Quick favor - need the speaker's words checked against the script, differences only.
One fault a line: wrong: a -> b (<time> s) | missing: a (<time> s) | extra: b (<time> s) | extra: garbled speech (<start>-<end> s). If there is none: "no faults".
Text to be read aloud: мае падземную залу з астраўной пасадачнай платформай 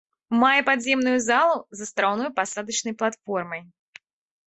no faults